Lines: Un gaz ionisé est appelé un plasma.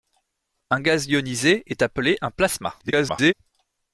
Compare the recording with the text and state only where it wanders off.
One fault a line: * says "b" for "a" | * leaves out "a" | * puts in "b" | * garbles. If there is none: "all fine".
* garbles